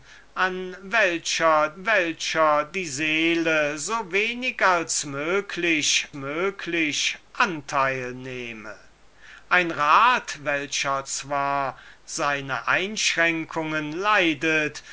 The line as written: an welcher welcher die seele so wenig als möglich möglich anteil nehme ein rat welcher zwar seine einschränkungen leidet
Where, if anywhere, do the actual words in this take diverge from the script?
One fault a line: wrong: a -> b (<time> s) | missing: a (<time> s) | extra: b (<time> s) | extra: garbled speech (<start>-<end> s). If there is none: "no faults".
no faults